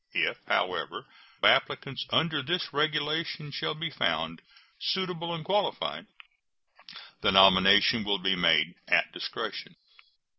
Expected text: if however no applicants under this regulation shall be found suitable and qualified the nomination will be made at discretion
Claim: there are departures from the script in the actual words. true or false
true